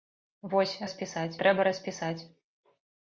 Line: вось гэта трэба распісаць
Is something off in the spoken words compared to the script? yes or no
yes